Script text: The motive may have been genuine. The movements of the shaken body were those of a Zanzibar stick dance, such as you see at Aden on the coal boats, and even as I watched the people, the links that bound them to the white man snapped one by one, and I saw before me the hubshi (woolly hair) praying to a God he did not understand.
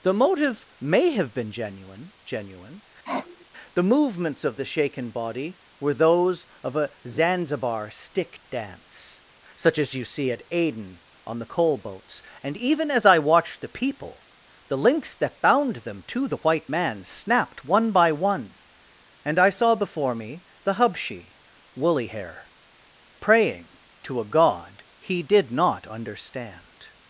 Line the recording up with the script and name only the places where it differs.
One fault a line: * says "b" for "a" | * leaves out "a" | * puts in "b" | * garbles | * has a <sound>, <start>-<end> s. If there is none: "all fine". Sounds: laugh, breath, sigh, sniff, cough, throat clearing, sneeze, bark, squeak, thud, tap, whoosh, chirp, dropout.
* puts in "genuine"
* has a sniff, 3.0-3.5 s